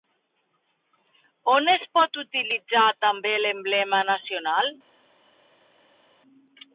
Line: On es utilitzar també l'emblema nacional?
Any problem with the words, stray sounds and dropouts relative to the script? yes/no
yes